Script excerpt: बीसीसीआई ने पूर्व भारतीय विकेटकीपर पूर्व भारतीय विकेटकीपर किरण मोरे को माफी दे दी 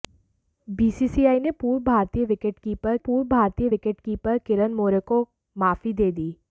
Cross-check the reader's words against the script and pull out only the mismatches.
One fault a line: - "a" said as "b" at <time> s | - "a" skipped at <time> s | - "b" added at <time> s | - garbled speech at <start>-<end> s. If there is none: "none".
none